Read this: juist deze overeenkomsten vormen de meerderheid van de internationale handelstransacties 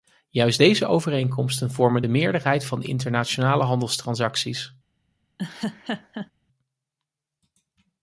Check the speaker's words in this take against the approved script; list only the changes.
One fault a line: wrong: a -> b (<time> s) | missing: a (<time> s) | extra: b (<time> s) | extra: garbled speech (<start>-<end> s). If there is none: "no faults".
no faults